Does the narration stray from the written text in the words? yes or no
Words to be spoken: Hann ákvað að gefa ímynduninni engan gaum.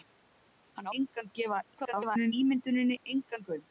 yes